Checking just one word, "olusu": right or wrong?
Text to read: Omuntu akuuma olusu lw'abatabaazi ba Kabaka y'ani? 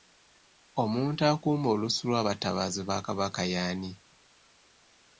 right